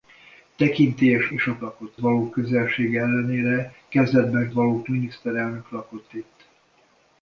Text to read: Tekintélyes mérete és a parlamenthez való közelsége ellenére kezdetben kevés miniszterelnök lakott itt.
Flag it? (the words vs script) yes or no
yes